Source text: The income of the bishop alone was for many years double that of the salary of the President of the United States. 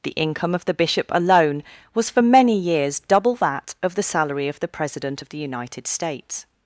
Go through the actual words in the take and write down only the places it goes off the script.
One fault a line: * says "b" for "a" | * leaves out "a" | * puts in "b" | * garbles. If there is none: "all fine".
all fine